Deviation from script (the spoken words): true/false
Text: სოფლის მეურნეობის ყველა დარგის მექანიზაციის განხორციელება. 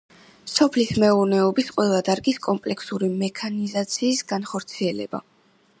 true